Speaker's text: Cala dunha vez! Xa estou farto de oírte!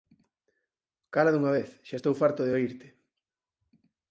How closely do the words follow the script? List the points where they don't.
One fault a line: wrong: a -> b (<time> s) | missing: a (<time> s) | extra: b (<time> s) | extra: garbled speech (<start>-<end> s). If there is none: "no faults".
no faults